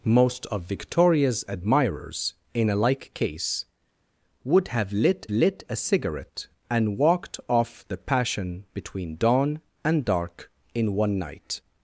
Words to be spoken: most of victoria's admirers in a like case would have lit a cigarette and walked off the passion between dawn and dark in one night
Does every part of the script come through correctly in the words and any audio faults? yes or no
no